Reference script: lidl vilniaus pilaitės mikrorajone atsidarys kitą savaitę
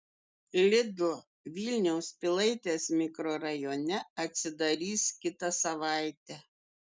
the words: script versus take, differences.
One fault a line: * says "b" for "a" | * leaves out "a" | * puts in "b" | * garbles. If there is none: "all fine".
all fine